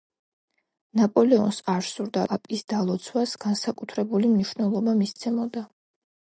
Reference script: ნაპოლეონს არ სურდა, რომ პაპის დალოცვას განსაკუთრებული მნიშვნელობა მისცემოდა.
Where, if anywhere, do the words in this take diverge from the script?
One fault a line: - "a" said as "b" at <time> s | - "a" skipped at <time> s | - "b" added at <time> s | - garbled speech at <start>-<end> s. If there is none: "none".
- "რომ" skipped at 2.2 s